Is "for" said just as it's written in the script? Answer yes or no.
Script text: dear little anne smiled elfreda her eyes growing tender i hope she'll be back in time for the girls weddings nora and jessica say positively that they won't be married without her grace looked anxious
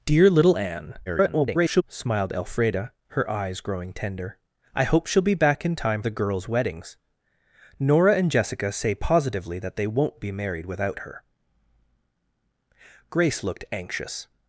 no